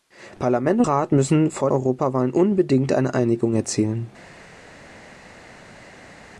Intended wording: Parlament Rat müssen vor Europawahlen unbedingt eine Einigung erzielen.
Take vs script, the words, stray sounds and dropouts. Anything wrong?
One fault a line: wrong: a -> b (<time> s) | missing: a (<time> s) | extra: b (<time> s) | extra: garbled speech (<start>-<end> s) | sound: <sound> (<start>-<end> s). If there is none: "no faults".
no faults